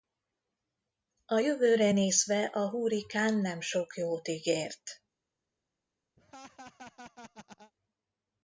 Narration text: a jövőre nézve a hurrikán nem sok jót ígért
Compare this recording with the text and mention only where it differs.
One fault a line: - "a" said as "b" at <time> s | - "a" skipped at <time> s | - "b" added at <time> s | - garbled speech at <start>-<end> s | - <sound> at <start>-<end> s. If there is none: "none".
- laugh at 6.2-7.7 s